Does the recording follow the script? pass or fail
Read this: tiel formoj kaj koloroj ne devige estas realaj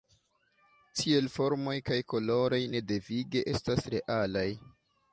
pass